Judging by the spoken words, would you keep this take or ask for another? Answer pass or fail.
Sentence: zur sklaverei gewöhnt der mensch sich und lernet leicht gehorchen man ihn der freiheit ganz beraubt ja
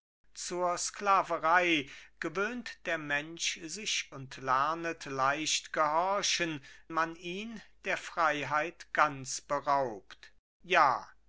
pass